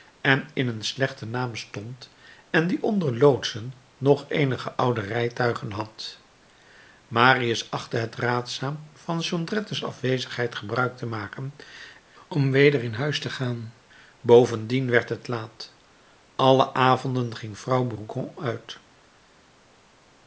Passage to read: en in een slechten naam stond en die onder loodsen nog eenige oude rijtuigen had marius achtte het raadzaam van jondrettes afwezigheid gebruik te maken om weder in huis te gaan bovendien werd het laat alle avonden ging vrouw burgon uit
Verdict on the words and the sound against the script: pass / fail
pass